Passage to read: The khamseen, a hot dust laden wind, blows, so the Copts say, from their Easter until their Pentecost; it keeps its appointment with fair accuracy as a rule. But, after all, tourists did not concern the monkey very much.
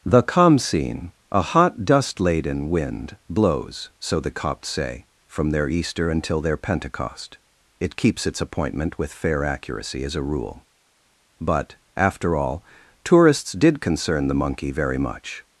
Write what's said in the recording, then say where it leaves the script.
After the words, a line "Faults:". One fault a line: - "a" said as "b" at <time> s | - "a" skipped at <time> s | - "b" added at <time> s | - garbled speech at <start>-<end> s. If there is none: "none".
The khamseen, a hot dust laden wind, blows, so the Copts say, from their Easter until their Pentecost; it keeps its appointment with fair accuracy as a rule. But, after all, tourists did concern the monkey very much.
Faults:
- "not" skipped at 13.8 s